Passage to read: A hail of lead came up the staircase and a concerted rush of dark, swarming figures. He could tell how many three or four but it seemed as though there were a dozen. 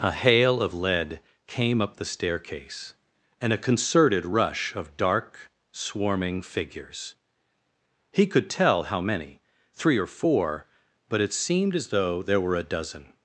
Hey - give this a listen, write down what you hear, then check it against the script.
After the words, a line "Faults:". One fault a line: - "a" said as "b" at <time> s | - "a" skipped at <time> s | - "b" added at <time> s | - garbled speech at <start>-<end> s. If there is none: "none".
A hail of lead came up the staircase and a concerted rush of dark, swarming figures. He could tell how many three or four but it seemed as though there were a dozen.
Faults:
none